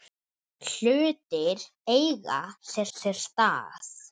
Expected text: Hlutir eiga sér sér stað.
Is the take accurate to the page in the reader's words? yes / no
yes